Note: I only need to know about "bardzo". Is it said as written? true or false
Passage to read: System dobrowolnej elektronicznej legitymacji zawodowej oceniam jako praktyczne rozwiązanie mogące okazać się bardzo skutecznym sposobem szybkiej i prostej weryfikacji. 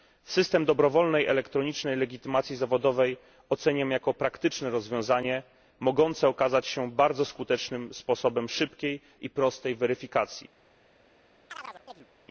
true